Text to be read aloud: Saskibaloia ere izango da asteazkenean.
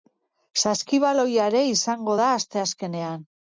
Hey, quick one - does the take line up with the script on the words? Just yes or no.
yes